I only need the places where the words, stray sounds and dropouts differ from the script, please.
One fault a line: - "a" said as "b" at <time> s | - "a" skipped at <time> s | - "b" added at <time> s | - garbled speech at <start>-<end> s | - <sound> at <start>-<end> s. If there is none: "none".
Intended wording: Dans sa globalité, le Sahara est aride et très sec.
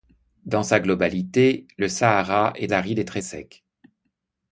none